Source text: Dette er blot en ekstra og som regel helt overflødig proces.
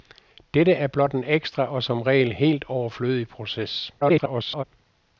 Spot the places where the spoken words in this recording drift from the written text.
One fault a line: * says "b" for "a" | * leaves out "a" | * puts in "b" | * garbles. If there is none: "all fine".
* garbles